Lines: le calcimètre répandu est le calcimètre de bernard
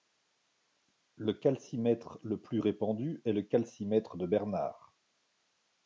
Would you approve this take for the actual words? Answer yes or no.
no